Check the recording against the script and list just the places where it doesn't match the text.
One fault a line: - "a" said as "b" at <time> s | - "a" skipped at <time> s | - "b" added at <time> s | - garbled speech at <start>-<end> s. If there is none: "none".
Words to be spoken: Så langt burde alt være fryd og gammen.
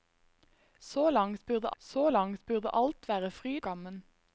- "så langt burde" added at 1.8 s
- "og" skipped at 3.7 s